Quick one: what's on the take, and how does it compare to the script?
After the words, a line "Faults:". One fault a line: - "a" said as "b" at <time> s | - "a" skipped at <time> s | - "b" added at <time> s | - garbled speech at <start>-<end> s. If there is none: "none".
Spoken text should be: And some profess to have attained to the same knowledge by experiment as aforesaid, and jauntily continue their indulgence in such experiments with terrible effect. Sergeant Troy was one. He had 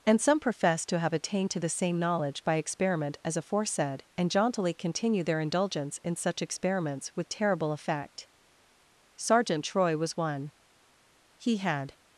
And some profess to have attained to the same knowledge by experiment as aforesaid, and jauntily continue their indulgence in such experiments with terrible effect. Sergeant Troy was one. He had
Faults:
none